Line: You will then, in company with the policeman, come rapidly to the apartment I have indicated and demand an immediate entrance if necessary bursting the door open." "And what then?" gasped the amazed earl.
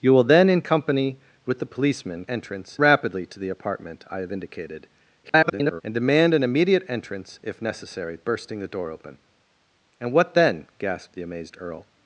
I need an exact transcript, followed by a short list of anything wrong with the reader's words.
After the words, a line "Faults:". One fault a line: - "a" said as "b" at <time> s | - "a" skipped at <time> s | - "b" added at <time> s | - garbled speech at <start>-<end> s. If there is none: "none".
You will then, in company with the policeman, entrance rapidly to the apartment I have indicated [garbled] and demand an immediate entrance if necessary bursting the door open." "And what then?" gasped the amazed earl.
Faults:
- "come" said as "entrance" at 2.3 s
- garbled speech at 5.2-5.8 s